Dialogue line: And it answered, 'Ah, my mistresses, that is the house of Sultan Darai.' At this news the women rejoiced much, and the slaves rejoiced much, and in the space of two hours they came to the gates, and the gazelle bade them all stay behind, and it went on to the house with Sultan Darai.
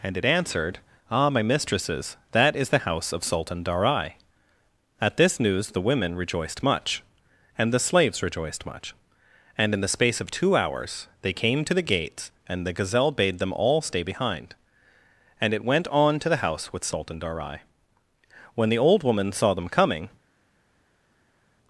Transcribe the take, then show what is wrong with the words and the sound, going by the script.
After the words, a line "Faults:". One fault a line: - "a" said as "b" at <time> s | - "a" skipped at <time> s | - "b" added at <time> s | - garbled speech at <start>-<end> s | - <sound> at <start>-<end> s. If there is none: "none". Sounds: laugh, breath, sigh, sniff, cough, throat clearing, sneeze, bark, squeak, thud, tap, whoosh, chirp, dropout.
And it answered, 'Ah, my mistresses, that is the house of Sultan Darai.' At this news the women rejoiced much, and the slaves rejoiced much, and in the space of two hours they came to the gates, and the gazelle bade them all stay behind, and it went on to the house with Sultan Darai. When the old woman saw them coming
Faults:
- "When the old woman saw them coming" added at 18.5 s